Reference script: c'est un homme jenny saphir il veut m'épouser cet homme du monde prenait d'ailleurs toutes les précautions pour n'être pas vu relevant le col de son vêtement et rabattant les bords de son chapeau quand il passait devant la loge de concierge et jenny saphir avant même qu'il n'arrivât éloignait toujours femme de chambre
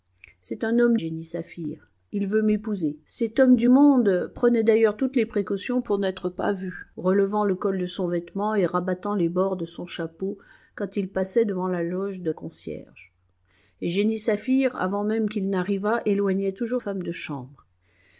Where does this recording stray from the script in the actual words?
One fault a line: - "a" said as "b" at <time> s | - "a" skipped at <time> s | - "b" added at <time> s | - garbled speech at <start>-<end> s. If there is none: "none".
none